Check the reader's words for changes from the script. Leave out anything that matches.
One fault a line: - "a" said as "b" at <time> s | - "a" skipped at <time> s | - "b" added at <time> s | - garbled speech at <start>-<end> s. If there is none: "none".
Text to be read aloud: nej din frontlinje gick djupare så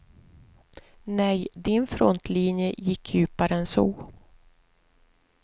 - "än" added at 3.5 s